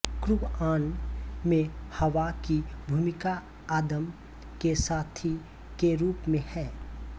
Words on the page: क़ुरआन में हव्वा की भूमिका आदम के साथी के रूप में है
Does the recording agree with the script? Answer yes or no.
yes